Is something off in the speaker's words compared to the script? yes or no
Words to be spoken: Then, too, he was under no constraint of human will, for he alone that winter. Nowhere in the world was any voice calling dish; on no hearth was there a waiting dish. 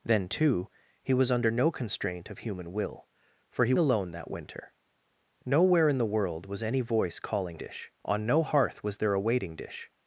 no